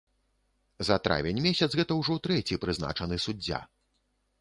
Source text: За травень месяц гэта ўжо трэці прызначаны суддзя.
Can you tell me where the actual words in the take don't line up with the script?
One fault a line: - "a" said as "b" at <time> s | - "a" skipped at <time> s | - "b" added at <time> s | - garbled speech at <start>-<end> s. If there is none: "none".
none